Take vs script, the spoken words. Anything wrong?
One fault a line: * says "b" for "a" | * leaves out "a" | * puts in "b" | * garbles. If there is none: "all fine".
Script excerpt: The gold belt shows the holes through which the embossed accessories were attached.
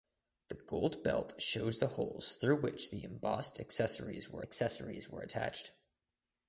* puts in "accessories were"